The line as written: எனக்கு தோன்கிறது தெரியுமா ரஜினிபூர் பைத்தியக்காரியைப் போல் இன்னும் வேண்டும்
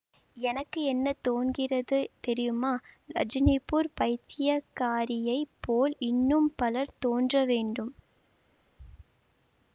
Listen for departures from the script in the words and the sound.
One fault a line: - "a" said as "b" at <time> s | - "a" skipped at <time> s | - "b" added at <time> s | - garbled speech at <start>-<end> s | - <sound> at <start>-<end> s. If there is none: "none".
- "என்ன" added at 0.8 s
- "பலர் தோன்ற" added at 6.6 s